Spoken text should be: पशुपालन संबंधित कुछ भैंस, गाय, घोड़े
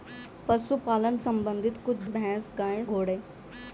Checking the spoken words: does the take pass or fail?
pass